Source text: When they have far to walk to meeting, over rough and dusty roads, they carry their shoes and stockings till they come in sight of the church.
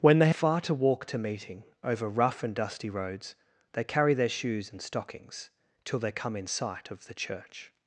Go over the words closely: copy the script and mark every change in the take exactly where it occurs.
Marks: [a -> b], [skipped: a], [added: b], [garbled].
When they [skipped: have] far to walk to meeting, over rough and dusty roads, they carry their shoes and stockings till they come in sight of the church.